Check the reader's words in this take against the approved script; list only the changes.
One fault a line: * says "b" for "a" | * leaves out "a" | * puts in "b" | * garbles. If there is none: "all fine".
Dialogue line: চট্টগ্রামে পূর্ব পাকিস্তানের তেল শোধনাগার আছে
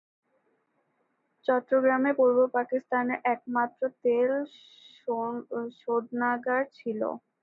* puts in "একমাত্র"
* says "ছিল" for "আছে"